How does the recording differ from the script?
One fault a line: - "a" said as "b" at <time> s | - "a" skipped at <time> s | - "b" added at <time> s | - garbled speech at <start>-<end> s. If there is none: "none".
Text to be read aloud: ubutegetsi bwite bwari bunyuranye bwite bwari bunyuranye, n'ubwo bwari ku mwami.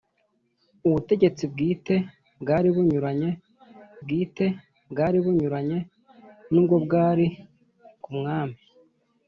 none